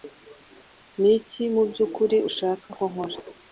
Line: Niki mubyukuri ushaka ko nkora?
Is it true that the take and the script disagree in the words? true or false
false